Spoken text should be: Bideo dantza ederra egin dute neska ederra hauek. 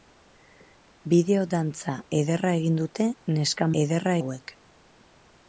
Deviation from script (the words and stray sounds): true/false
false